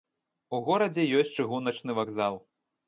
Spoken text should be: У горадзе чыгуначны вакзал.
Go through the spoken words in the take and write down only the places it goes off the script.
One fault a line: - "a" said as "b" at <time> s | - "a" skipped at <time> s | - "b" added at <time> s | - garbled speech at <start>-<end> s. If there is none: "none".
- "ёсць" added at 1.2 s